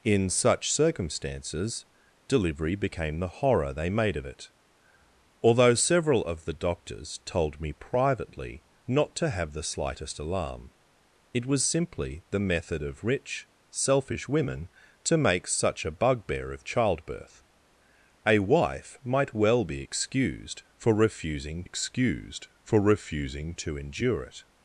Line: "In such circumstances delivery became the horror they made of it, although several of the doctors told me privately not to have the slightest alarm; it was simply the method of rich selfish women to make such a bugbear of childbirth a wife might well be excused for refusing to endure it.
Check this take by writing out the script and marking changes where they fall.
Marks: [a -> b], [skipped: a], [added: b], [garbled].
"In such circumstances delivery became the horror they made of it, although several of the doctors told me privately not to have the slightest alarm; it was simply the method of rich selfish women to make such a bugbear of childbirth a wife might well be excused for refusing [added: excused for refusing] to endure it.